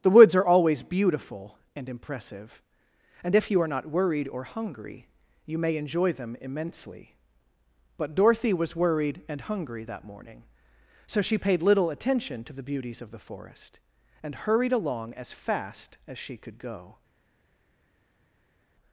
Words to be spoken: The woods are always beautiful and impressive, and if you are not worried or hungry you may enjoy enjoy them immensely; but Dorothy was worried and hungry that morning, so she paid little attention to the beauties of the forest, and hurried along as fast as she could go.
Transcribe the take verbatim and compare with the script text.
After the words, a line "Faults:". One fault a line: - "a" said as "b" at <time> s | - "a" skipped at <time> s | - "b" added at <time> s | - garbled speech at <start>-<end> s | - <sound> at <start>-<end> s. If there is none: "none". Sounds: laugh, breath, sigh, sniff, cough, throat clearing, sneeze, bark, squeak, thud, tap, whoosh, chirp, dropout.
The woods are always beautiful and impressive, and if you are not worried or hungry you may enjoy them immensely; but Dorothy was worried and hungry that morning, so she paid little attention to the beauties of the forest, and hurried along as fast as she could go.
Faults:
- "enjoy" skipped at 6.1 s